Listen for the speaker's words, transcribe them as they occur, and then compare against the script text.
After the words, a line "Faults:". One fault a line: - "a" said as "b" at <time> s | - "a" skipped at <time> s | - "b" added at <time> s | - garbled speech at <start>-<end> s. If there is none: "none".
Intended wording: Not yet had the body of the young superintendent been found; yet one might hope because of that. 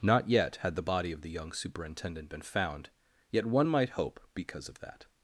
Not yet had the body of the young superintendent been found; yet one might hope because of that.
Faults:
none